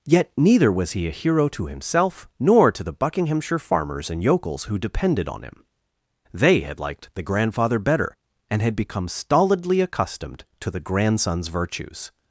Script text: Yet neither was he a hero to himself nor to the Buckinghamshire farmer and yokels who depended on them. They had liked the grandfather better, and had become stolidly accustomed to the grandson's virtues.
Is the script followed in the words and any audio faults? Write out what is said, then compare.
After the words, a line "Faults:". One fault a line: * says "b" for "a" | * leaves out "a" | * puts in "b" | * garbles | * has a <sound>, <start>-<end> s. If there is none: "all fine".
Yet neither was he a hero to himself nor to the Buckinghamshire farmers and yokels who depended on him. They had liked the grandfather better, and had become stolidly accustomed to the grandson's virtues.
Faults:
* says "farmers" for "farmer"
* says "him" for "them"